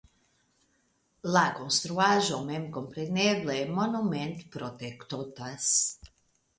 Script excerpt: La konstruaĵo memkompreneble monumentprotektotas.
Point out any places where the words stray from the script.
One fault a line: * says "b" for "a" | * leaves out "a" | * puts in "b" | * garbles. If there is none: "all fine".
all fine